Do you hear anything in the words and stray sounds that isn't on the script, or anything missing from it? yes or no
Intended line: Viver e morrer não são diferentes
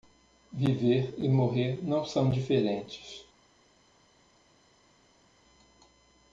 no